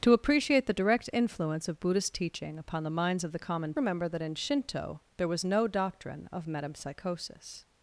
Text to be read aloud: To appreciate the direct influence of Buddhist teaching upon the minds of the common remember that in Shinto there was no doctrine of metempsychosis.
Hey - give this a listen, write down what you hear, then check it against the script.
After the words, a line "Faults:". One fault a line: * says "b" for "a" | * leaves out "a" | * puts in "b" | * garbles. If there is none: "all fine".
To appreciate the direct influence of Buddhist teaching upon the minds of the common remember that in Shinto there was no doctrine of metempsychosis.
Faults:
all fine